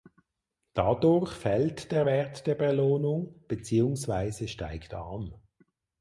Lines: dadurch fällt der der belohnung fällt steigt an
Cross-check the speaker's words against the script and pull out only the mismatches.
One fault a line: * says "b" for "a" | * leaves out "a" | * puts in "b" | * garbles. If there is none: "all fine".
* puts in "wert"
* says "beziehungsweise" for "fällt"